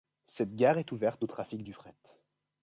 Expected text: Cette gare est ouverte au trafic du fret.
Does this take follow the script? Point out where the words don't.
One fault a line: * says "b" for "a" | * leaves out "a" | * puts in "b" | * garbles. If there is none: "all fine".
all fine